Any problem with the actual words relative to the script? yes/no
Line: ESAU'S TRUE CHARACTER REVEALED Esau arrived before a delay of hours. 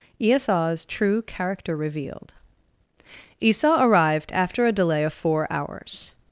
yes